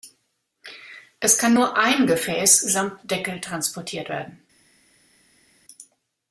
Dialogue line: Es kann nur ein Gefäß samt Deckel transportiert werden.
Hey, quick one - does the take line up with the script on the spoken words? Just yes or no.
yes